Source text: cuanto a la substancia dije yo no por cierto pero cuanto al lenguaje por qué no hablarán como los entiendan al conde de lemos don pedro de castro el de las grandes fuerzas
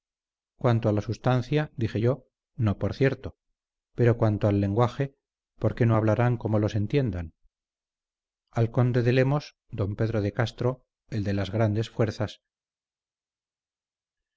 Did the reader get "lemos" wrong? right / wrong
right